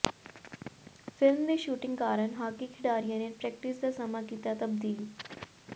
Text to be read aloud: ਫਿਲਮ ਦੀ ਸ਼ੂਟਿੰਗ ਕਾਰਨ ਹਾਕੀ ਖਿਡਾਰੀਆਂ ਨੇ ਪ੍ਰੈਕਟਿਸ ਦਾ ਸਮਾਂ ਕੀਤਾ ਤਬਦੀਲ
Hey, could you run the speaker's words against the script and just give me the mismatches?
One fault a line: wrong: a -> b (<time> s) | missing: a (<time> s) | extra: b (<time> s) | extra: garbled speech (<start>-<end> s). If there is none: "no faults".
no faults